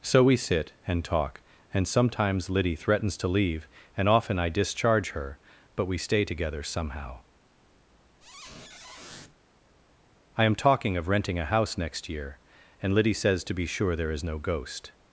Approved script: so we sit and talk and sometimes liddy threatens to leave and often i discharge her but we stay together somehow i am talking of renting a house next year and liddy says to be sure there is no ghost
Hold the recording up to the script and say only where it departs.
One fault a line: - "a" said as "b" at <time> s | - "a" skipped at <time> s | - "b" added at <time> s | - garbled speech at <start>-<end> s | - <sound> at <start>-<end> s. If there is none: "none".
- squeak at 8.2-9.3 s